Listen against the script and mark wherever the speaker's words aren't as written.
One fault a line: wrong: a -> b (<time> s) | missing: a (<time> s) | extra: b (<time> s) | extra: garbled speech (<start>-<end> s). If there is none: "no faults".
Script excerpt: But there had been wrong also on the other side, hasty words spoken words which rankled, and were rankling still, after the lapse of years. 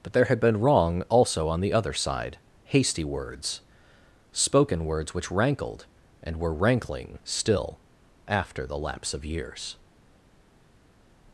no faults